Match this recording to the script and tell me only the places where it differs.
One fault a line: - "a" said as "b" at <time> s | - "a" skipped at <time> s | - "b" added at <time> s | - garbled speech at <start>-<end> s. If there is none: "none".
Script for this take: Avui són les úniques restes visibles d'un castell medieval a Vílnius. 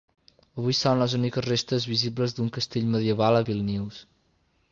none